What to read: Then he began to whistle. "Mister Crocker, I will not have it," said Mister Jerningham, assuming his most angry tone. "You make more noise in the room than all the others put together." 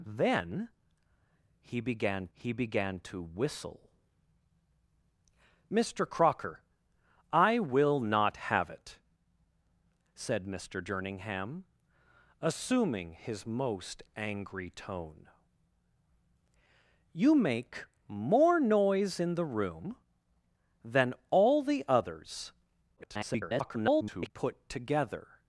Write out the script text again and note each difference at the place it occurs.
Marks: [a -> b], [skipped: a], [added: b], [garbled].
Then he began [added: he began] to whistle. "Mister Crocker, I will not have it," said Mister Jerningham, assuming his most angry tone. "You make more noise in the room than all the others [garbled] put together."